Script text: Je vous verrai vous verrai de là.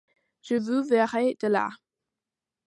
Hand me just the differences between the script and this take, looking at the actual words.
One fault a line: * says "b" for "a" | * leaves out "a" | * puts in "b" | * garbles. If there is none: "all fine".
* leaves out "vous verrai"